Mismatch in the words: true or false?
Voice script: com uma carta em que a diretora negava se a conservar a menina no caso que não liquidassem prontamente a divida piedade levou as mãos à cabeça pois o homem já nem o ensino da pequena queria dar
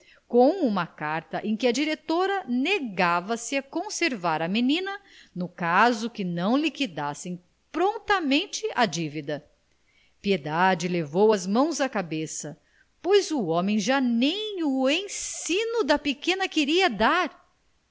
false